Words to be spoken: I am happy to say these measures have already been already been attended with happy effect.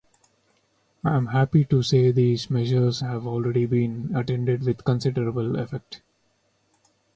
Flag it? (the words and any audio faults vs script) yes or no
yes